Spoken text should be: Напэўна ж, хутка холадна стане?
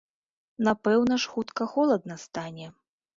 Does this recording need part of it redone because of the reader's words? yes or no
no